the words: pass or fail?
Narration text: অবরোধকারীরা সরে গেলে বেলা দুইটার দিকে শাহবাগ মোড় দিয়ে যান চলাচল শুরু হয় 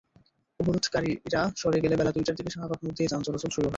pass